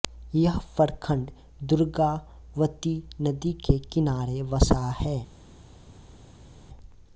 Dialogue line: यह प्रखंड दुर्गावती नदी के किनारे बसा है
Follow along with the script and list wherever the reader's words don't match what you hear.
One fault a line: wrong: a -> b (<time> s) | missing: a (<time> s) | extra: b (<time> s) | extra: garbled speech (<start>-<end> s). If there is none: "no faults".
no faults